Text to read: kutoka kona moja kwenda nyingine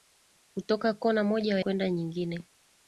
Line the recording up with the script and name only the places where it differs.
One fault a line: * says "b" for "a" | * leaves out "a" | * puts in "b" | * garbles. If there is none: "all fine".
all fine